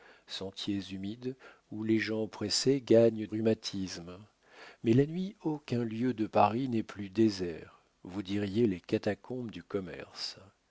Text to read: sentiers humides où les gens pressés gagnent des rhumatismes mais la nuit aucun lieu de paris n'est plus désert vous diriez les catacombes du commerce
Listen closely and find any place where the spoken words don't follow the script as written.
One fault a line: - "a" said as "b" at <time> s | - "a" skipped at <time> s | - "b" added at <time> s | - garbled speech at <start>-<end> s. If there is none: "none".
- "des" skipped at 3.3 s